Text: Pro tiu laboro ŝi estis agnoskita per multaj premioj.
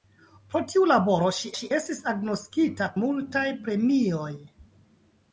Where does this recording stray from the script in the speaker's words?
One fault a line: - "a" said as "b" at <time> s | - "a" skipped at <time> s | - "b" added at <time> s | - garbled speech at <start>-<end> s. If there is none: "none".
- "ŝi" added at 1.6 s
- "per" skipped at 2.9 s